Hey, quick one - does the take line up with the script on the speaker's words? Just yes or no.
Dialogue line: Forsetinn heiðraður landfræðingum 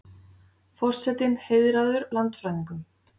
yes